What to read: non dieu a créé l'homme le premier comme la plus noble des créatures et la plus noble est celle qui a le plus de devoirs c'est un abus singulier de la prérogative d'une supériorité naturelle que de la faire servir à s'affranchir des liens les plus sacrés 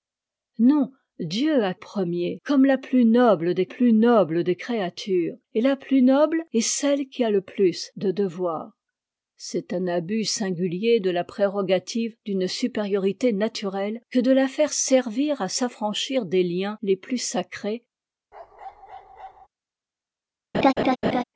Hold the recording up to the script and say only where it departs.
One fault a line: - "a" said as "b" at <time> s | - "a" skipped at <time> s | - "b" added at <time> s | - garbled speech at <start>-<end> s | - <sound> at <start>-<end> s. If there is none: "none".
- "créé l'homme le premier comme la" said as "premier comme la plus noble des" at 1.7 s
- bark at 18.3-19.5 s
- laugh at 20.5-21.2 s